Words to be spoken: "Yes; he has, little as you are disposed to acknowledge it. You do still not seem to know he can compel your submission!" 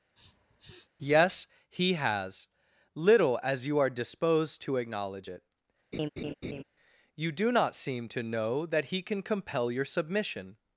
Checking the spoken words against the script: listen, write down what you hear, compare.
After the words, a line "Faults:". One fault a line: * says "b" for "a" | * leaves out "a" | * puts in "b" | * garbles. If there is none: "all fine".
"Yes; he has, little as you are disposed to acknowledge it. You do not seem to know that he can compel your submission!"
Faults:
* leaves out "still"
* puts in "that"